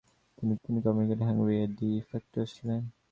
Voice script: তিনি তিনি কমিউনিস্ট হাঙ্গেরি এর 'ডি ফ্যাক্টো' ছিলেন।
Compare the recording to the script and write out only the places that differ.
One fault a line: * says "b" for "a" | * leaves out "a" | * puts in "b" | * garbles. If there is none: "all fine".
all fine